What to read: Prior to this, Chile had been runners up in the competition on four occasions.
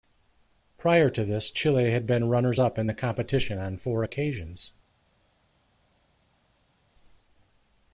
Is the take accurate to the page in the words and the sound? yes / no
yes